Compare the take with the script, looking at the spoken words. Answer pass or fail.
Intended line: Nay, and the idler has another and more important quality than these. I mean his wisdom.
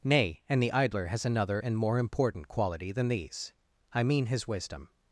pass